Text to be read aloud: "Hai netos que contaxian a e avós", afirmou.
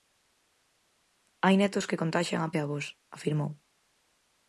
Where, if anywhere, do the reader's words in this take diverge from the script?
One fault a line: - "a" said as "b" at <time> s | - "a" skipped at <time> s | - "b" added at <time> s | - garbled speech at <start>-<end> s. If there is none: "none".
none